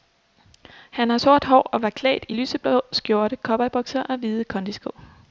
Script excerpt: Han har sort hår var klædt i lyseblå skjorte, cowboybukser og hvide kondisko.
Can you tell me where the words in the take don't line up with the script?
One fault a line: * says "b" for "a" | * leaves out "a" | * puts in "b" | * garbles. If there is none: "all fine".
* puts in "og"